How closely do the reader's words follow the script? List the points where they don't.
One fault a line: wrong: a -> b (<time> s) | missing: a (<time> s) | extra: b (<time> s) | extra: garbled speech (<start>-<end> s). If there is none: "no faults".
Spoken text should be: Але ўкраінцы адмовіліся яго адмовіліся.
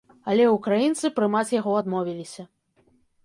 wrong: адмовіліся -> прымаць (1.2 s)